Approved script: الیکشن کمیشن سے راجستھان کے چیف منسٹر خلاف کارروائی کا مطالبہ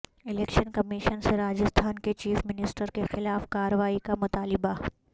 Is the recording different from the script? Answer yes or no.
yes